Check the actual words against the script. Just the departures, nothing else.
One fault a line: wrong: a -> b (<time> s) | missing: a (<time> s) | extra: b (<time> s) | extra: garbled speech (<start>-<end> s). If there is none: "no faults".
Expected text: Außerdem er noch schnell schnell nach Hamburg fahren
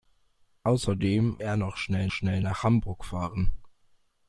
no faults